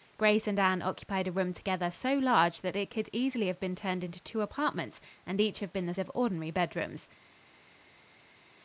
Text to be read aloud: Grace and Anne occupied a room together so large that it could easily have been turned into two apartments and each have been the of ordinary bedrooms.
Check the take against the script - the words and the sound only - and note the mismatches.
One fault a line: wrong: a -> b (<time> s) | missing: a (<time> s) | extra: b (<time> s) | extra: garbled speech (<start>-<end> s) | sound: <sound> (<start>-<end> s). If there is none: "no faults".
no faults